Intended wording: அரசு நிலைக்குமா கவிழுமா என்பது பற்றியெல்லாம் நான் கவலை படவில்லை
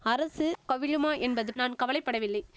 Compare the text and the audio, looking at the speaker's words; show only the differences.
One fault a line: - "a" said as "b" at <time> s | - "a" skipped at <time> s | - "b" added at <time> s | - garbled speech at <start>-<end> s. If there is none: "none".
- "நிலைக்குமா" skipped at 0.5 s
- "பற்றியெல்லாம்" skipped at 1.5 s